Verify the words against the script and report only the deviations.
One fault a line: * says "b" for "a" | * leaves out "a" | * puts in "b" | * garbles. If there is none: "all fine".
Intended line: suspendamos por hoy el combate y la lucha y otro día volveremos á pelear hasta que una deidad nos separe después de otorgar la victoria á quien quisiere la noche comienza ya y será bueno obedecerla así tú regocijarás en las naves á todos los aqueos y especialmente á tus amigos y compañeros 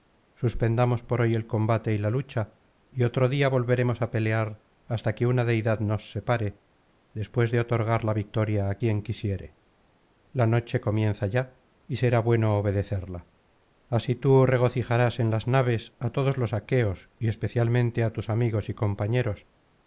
all fine